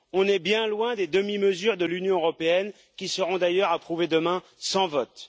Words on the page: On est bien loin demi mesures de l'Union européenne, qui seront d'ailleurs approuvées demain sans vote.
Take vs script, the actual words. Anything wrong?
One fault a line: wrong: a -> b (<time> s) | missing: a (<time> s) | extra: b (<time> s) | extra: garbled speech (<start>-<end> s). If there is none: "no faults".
extra: des (0.9 s)